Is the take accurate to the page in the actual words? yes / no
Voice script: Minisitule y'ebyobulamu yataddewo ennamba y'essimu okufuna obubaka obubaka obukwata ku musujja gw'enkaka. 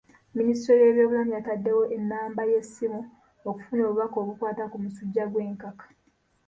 no